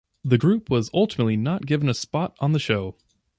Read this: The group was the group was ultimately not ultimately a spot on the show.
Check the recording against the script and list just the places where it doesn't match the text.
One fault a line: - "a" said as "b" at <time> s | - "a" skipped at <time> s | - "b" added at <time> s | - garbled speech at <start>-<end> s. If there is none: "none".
- "the group was" skipped at 0.9 s
- "ultimately" said as "given" at 1.6 s